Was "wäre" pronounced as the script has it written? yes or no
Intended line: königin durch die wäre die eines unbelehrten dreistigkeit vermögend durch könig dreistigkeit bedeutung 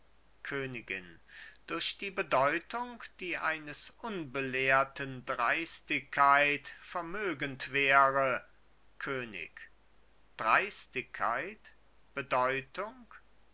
no